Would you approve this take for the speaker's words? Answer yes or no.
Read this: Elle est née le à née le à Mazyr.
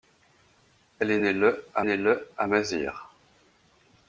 yes